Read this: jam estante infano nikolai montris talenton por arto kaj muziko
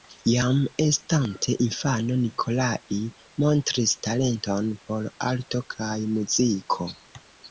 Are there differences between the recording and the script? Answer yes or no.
no